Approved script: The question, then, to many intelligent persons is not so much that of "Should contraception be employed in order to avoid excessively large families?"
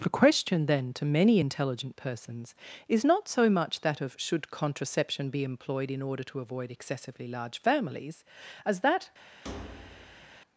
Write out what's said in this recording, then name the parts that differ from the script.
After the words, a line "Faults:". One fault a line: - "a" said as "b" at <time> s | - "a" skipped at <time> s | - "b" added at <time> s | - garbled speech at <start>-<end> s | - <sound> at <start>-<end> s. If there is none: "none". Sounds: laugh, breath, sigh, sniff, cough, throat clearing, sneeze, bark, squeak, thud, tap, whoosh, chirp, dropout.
The question, then, to many intelligent persons is not so much that of "Should contraception be employed in order to avoid excessively large families?" as that
Faults:
- "as that" added at 8.7 s
- thud at 9.4-10.4 s